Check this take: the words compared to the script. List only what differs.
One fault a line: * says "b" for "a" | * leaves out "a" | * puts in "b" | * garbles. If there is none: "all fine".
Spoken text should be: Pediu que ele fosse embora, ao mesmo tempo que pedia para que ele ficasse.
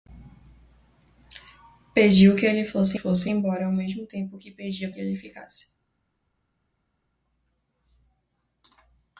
* puts in "fosse"
* leaves out "para"